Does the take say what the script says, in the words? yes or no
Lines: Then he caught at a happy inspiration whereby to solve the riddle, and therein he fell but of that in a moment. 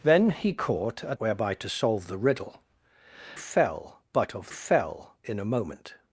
no